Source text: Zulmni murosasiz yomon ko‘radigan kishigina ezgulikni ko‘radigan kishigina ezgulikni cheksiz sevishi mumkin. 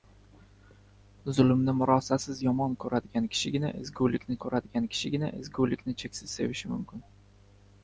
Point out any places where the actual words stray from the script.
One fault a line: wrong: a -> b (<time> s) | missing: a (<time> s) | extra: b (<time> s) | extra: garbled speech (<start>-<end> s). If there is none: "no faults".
no faults